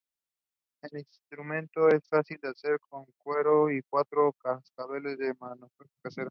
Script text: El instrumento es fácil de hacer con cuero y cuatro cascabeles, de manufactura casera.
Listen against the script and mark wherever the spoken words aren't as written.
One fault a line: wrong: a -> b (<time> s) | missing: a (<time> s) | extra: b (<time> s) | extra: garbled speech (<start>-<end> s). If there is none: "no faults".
no faults